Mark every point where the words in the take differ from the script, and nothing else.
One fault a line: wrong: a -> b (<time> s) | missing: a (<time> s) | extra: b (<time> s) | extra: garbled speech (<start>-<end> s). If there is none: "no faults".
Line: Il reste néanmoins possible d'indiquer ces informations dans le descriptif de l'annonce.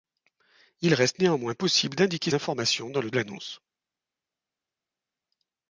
missing: ces (2.3 s)
missing: descriptif de (3.1 s)